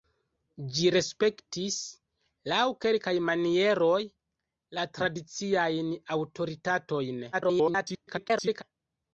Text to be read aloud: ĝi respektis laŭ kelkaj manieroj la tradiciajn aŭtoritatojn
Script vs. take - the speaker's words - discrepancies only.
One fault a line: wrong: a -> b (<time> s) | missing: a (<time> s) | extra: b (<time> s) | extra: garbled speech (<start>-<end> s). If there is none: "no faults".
extra: garbled speech (7.3-8.6 s)